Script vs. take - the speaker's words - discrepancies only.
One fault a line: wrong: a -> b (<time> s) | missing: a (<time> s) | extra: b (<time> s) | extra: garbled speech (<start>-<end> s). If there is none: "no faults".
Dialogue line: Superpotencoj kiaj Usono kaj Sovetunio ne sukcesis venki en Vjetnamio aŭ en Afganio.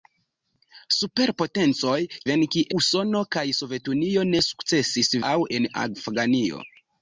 wrong: kiaj -> venki (2.3 s)
missing: venki en Vjetnamio (5.1 s)